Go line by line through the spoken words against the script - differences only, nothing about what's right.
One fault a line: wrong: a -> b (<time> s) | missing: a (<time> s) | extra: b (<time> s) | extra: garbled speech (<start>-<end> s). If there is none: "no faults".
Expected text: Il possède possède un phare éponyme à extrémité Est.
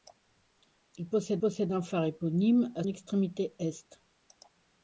no faults